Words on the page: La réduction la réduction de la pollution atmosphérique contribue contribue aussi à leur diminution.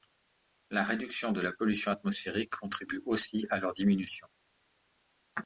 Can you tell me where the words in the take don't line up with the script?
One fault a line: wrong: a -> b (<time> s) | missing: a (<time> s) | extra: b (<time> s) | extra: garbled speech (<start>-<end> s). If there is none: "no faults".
missing: la réduction (1.3 s)
missing: contribue (3.0 s)